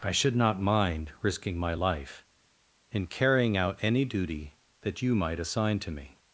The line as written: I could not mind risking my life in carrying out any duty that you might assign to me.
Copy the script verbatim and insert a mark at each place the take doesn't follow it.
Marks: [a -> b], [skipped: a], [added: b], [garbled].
I [could -> should] not mind risking my life in carrying out any duty that you might assign to me.